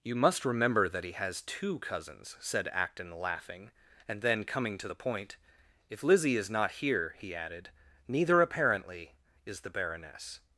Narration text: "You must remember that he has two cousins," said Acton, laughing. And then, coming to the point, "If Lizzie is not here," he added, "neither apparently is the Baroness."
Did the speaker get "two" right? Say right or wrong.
right